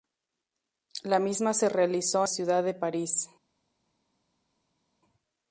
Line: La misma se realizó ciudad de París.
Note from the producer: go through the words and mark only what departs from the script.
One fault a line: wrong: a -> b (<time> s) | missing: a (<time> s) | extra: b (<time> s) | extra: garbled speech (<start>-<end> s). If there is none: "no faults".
no faults